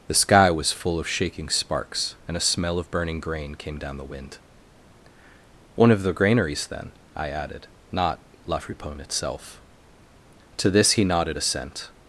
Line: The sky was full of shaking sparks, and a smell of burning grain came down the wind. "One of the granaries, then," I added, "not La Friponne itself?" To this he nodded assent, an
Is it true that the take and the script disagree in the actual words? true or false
true